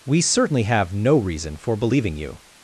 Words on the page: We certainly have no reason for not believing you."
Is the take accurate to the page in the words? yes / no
no